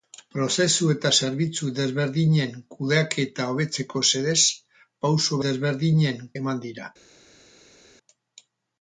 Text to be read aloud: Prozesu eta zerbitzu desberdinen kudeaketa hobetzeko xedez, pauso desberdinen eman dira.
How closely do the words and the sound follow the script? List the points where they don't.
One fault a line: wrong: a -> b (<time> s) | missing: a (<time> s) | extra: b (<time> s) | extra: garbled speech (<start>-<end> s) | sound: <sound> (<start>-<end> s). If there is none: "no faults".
no faults